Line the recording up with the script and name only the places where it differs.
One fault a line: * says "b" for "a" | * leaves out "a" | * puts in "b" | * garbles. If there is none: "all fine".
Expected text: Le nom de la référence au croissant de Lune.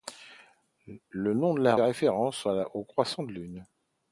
all fine